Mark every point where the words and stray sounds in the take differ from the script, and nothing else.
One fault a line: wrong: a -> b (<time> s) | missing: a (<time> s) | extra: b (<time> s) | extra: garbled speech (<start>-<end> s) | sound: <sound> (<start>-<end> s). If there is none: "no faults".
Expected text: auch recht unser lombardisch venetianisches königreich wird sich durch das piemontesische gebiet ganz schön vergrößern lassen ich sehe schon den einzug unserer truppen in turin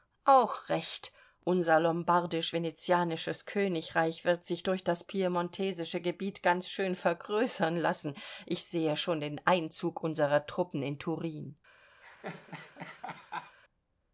sound: laugh (12.0-13.6 s)